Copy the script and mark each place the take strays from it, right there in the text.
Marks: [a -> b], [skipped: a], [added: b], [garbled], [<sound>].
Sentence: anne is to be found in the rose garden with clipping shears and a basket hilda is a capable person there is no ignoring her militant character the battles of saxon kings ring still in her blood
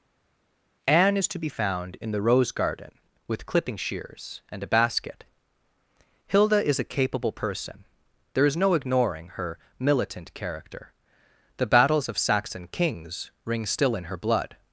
anne is to be found in the rose garden with clipping shears and a basket hilda is a capable person there is no ignoring her militant character the battles of saxon kings ring still in her blood